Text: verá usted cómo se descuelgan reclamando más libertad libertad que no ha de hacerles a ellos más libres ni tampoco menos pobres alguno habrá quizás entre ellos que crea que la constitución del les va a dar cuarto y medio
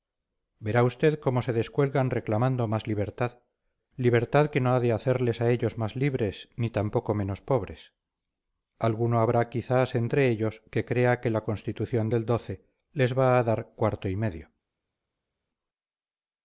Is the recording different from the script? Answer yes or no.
no